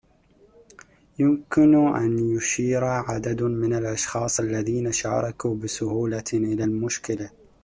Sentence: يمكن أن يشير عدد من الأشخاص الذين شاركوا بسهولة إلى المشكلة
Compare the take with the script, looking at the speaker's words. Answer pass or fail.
pass